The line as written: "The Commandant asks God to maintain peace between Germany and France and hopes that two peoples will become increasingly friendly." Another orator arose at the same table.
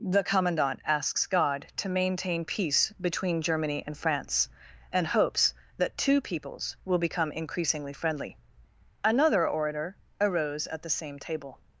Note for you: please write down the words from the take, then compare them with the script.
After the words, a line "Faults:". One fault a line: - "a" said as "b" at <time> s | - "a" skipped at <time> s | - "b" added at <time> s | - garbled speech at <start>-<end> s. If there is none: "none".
"The Commandant asks God to maintain peace between Germany and France and hopes that two peoples will become increasingly friendly." Another orator arose at the same table.
Faults:
none